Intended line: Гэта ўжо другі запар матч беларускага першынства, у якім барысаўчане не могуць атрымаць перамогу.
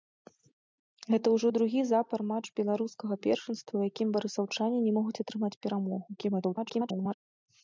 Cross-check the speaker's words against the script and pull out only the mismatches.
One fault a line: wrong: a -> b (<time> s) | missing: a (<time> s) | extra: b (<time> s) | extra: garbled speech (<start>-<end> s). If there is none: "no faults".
extra: garbled speech (6.2-7.1 s)